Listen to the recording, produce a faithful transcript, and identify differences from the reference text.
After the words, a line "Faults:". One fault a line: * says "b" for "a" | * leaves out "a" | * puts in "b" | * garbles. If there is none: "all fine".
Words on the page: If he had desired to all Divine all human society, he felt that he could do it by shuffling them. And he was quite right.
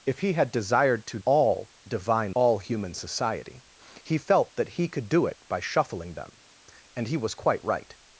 If he had desired to all Divine all human society, he felt that he could do it by shuffling them. And he was quite right.
Faults:
all fine